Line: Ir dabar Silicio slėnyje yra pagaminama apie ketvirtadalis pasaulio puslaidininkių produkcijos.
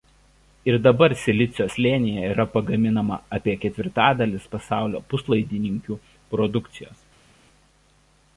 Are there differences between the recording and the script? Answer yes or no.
no